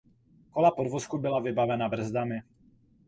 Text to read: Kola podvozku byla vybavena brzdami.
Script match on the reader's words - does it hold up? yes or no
yes